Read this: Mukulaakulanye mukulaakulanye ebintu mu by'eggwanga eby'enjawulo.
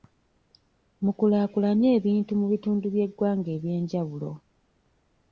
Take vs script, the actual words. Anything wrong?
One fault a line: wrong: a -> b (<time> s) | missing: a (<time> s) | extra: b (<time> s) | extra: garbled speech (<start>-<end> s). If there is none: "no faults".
missing: mukulaakulanye (1.9 s)
extra: bitundu (2.5 s)